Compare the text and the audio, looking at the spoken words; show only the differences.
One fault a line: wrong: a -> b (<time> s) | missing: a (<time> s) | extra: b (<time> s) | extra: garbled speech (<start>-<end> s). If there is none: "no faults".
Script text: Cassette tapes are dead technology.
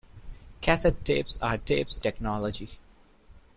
wrong: dead -> tapes (1.7 s)